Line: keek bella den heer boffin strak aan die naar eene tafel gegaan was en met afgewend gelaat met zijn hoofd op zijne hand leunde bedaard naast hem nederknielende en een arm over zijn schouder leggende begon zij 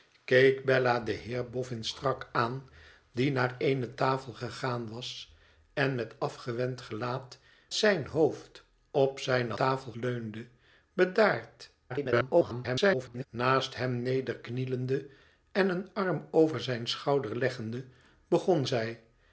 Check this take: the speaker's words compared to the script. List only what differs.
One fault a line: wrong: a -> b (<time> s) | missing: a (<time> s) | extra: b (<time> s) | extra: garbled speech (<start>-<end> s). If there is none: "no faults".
missing: met (7.4 s)
wrong: hand -> tafel (9.5 s)
extra: garbled speech (11.9-13.3 s)